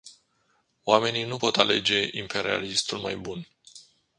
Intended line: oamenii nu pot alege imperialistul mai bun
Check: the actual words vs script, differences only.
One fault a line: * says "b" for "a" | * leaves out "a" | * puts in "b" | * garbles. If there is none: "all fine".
all fine